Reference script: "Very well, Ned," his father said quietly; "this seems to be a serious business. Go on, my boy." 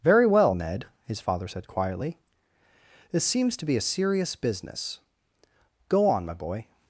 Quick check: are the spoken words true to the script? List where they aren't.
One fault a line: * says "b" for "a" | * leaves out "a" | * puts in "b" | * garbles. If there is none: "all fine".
all fine